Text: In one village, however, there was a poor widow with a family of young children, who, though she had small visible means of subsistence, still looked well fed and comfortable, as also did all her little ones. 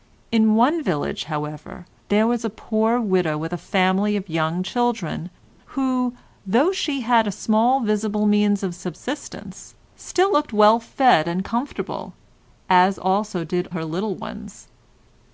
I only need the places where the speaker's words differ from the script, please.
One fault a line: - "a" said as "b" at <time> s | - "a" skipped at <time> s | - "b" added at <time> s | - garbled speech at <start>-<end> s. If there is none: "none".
- "all" skipped at 13.7 s